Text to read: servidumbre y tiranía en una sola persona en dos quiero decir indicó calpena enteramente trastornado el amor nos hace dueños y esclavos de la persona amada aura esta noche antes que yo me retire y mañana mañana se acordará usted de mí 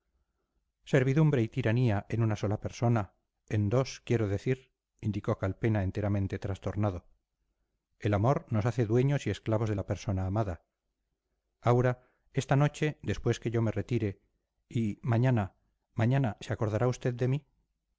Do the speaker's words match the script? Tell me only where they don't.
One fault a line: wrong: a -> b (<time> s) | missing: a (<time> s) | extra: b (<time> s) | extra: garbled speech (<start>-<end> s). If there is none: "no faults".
wrong: antes -> después (13.0 s)